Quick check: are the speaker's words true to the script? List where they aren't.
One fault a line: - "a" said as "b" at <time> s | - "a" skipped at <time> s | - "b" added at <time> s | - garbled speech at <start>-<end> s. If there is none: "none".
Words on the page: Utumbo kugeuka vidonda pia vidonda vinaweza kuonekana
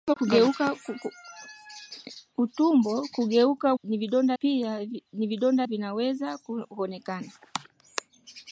none